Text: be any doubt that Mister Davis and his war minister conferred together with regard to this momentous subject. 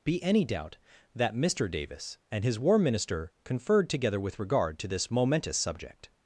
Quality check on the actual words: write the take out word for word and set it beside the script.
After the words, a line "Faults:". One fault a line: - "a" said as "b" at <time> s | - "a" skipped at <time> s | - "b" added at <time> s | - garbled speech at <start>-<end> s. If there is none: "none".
be any doubt that Mister Davis and his war minister conferred together with regard to this momentous subject.
Faults:
none